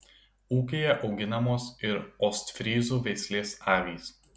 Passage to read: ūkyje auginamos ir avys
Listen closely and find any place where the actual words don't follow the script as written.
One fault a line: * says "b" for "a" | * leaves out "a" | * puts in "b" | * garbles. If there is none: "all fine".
* puts in "ostfryzų veislės"